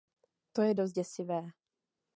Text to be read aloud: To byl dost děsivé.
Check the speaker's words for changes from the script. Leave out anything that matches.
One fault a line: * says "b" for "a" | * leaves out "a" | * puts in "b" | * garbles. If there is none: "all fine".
* says "je" for "byl"